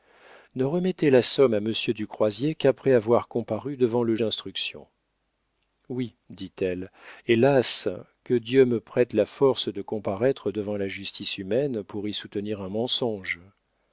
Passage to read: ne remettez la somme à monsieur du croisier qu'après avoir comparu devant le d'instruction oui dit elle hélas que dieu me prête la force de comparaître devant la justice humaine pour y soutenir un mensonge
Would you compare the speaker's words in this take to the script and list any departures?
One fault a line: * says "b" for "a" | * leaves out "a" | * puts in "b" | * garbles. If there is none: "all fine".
all fine